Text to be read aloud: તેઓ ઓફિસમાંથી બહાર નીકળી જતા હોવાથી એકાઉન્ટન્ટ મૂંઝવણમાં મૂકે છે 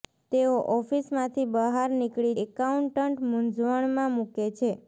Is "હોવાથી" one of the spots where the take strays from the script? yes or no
yes